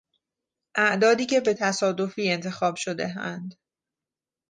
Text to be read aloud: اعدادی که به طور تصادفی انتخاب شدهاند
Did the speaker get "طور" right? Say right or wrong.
wrong